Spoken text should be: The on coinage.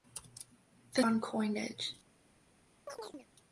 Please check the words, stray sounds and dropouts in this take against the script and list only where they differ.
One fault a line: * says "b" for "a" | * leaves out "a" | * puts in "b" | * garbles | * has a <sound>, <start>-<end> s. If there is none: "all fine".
* has a chirp, 2.9-3.3 s